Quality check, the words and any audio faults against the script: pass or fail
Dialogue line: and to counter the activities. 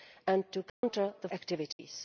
fail